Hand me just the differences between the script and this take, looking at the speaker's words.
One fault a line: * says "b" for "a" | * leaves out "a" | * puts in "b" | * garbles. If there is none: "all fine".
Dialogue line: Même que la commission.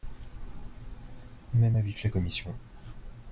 * puts in "avis"